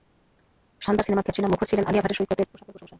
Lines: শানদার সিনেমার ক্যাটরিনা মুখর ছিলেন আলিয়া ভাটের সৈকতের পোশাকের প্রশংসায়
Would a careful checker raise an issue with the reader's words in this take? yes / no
no